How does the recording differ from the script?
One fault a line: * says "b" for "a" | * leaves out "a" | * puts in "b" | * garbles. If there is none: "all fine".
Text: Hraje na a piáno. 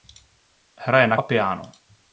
all fine